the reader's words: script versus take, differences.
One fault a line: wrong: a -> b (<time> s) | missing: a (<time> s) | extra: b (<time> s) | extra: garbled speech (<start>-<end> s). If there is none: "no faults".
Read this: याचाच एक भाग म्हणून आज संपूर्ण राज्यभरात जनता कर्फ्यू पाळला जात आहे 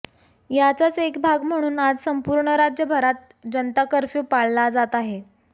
no faults